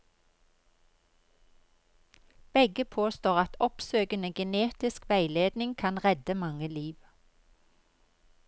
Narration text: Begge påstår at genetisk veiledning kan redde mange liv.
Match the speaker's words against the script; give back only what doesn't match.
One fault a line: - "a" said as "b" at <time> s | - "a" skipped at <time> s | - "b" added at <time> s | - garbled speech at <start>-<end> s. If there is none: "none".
- "oppsøkende" added at 3.6 s